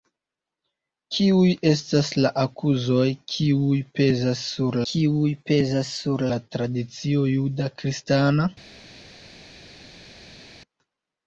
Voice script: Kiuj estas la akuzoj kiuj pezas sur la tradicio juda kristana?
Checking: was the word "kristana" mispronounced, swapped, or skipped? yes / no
no